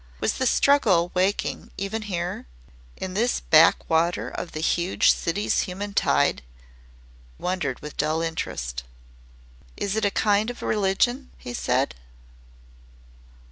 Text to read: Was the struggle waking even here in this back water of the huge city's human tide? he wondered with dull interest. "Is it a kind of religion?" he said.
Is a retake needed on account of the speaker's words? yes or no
yes